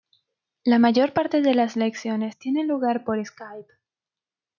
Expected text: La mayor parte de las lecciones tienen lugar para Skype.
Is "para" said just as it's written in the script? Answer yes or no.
no